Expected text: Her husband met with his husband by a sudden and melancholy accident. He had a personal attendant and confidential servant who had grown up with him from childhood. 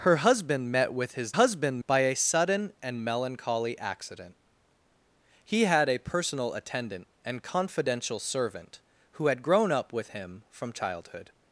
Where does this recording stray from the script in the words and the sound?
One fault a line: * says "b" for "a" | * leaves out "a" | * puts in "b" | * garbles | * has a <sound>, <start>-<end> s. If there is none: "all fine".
all fine